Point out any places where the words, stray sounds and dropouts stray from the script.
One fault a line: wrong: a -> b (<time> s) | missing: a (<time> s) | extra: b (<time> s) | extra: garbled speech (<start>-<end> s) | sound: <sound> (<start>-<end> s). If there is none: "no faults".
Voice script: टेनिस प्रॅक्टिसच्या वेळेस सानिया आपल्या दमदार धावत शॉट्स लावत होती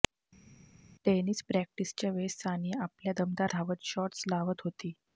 no faults